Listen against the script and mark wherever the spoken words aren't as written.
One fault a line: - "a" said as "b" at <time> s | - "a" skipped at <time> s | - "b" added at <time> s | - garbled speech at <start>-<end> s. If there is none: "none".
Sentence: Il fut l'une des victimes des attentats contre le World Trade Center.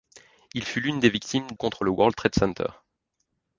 - "des attentats" skipped at 1.4 s